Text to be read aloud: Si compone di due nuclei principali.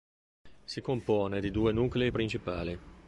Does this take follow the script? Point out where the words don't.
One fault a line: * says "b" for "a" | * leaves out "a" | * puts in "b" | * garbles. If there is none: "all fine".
all fine